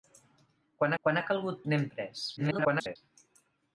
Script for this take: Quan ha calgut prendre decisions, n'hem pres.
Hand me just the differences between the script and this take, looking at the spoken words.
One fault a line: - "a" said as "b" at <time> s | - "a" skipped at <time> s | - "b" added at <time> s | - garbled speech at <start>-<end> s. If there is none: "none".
- "quan" added at 1.0 s
- "prendre decisions" skipped at 1.6 s
- garbled speech at 2.4-3.0 s